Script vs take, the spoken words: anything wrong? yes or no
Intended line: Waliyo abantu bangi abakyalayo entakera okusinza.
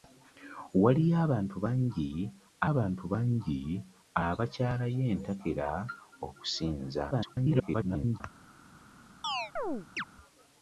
yes